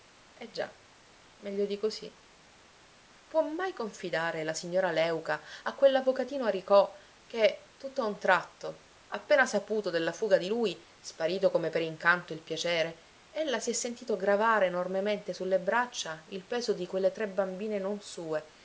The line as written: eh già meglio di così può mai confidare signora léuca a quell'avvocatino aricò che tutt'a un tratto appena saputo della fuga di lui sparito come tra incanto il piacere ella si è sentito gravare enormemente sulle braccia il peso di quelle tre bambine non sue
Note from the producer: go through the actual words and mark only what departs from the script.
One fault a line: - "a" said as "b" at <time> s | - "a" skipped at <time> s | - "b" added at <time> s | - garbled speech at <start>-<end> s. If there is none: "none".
- "la" added at 4.4 s
- "tra" said as "per" at 11.7 s